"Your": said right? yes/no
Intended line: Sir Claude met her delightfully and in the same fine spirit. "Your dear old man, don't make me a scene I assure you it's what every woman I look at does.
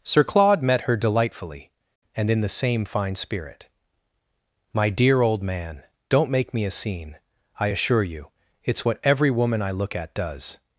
no